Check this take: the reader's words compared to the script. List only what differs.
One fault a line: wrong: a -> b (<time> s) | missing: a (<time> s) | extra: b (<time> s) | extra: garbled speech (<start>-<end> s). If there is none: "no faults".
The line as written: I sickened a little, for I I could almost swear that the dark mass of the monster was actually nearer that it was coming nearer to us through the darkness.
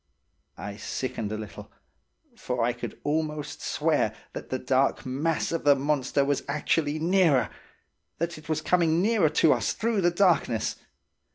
missing: I (2.7 s)